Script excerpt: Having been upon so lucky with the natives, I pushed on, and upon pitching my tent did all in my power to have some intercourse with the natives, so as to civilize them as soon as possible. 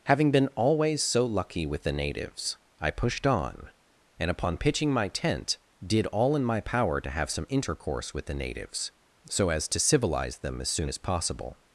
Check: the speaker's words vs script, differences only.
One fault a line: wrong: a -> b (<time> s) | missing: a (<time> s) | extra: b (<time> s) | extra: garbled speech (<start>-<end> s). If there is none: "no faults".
wrong: upon -> always (0.6 s)